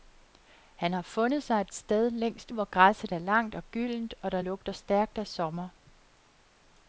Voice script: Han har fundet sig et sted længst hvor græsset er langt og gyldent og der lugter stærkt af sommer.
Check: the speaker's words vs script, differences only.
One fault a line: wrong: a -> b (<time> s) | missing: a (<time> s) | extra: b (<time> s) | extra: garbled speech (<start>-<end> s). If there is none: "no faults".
no faults